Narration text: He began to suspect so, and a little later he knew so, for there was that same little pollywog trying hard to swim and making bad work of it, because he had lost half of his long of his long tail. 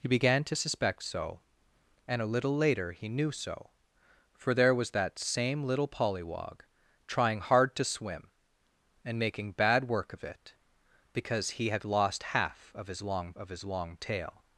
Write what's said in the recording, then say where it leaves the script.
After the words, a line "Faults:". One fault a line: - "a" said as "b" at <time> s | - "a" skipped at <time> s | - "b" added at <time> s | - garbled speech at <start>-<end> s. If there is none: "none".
He began to suspect so, and a little later he knew so, for there was that same little pollywog trying hard to swim and making bad work of it, because he had lost half of his long of his long tail.
Faults:
none